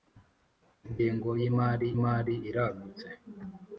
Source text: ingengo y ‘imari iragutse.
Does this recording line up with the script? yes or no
no